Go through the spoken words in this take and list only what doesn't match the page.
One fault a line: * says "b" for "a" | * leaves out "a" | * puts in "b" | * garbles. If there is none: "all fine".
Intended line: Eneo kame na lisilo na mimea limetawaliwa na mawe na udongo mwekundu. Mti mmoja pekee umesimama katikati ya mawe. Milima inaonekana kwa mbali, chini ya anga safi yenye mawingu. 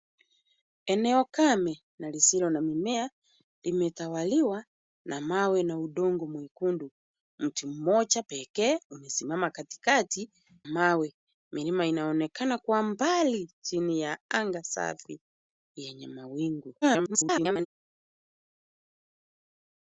* leaves out "ya"
* garbles